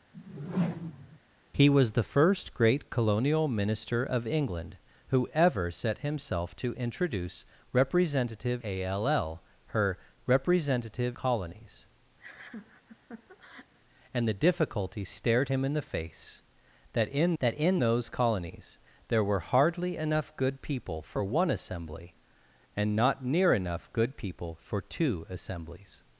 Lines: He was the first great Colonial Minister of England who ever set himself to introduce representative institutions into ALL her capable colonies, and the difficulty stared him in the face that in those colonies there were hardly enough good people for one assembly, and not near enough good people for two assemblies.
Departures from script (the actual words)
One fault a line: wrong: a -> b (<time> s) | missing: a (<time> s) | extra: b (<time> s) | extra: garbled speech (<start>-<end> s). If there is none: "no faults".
missing: institutions into (8.6 s)
wrong: capable -> representative (10.2 s)
extra: that in (17.4 s)